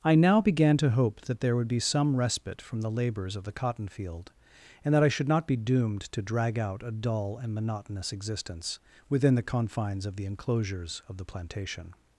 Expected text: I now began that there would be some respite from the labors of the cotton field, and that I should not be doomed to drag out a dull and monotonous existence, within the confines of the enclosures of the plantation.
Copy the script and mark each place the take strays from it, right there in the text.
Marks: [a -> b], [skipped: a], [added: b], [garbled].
I now began [added: to hope] that there would be some respite from the labors of the cotton field, and that I should not be doomed to drag out a dull and monotonous existence, within the confines of the enclosures of the plantation.